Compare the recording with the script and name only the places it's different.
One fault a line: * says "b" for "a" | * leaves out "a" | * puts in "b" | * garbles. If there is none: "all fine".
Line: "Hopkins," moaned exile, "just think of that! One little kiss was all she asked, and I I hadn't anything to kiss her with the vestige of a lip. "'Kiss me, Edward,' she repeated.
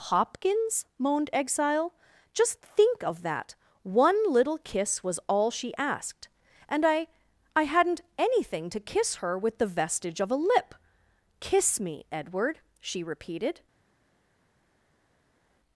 all fine